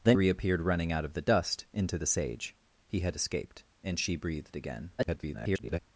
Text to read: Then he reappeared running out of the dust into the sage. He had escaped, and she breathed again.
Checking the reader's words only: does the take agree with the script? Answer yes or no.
no